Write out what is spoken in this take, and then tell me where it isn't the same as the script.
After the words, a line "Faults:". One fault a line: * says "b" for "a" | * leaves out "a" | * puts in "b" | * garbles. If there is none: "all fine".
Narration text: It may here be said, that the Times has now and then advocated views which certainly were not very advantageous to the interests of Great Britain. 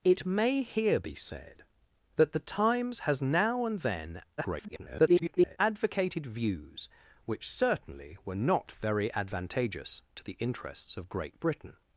It may here be said, that the Times has now and then [garbled] advocated views which certainly were not very advantageous to the interests of Great Britain.
Faults:
* garbles